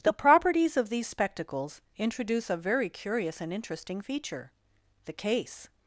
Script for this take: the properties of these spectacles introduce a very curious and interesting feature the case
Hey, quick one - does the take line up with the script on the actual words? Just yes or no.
yes